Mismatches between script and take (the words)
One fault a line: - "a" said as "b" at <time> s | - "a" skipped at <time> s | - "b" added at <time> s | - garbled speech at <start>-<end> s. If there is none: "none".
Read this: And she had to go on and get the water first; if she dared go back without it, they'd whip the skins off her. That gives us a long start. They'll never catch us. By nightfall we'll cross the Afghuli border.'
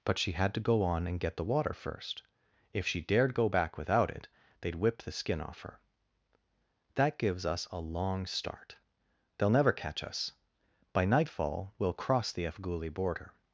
- "And" said as "But" at 0.0 s
- "skins" said as "skin" at 5.1 s